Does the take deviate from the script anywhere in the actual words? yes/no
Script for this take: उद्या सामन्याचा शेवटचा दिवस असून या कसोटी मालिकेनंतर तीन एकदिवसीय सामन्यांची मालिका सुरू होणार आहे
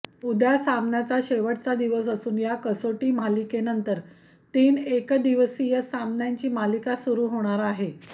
no